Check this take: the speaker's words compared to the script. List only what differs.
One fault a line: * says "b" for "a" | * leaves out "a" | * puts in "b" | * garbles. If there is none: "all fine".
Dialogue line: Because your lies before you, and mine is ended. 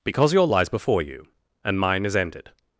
all fine